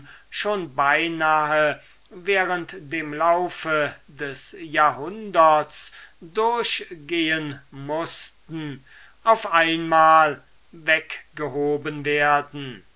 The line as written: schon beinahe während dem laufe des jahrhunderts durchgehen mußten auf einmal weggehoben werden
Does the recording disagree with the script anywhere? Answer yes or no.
no